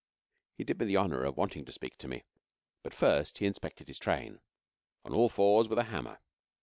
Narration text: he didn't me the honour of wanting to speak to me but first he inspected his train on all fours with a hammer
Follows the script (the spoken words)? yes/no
no